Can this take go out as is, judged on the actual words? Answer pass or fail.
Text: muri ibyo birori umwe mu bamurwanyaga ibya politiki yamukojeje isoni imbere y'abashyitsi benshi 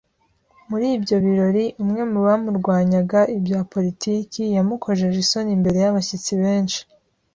pass